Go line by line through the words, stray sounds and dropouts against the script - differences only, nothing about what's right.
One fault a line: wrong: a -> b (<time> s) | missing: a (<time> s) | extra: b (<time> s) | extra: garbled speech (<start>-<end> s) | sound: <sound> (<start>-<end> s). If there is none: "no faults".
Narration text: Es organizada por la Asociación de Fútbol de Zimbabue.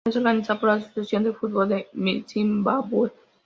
no faults